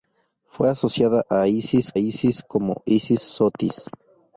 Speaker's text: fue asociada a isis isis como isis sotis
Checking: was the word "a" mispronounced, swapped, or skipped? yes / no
no